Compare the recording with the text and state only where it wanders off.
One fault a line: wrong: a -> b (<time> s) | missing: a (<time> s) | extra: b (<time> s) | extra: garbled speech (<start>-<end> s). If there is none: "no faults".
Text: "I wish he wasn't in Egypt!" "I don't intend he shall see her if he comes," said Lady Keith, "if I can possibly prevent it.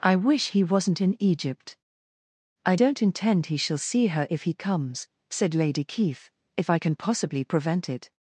no faults